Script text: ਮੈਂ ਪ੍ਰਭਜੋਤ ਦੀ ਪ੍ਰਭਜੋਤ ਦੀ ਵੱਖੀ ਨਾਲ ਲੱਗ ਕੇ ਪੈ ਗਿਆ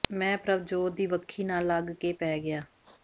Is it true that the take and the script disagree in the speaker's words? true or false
true